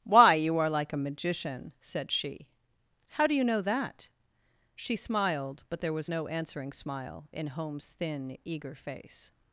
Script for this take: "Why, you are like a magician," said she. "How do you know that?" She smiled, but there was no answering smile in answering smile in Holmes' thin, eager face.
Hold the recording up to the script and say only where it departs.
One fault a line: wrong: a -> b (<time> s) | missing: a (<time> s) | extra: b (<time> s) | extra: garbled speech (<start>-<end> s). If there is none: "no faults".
missing: answering smile in (7.5 s)